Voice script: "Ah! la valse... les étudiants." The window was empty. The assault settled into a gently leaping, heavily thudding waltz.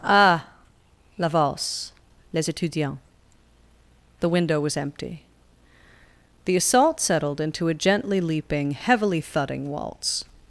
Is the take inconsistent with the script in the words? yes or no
no